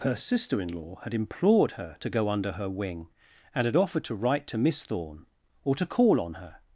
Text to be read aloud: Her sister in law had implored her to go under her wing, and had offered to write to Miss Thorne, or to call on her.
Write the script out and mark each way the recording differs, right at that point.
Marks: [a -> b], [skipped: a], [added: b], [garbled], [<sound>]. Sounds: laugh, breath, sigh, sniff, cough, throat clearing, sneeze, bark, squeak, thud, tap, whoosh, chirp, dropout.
Her sister in law had implored her to go under her wing, and had offered to write to Miss Thorne, or to call on her.